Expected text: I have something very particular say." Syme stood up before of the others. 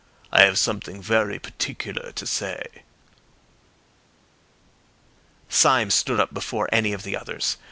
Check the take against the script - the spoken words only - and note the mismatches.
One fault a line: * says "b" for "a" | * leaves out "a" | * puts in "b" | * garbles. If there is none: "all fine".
* puts in "to"
* puts in "any"